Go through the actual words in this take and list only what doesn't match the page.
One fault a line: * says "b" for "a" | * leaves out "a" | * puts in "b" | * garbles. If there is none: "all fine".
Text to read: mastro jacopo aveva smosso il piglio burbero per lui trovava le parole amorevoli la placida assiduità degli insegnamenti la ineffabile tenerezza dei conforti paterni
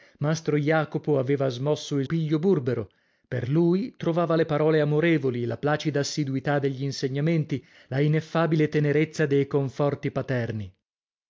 all fine